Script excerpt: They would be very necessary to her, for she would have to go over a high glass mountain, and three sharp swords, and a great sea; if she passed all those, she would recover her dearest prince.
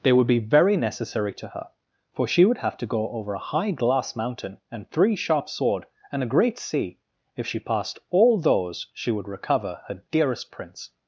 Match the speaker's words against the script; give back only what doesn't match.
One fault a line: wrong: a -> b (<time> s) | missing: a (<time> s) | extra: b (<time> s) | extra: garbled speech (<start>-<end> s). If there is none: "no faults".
wrong: swords -> sword (5.5 s)